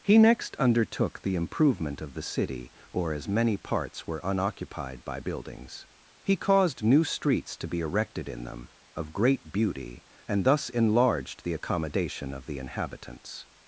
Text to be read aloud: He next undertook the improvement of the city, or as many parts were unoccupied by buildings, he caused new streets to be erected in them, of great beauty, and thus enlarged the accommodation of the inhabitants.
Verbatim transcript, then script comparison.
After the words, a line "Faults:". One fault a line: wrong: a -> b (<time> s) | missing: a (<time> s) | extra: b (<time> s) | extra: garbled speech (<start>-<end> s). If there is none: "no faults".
He next undertook the improvement of the city, or as many parts were unoccupied by buildings, he caused new streets to be erected in them, of great beauty, and thus enlarged the accommodation of the inhabitants.
Faults:
no faults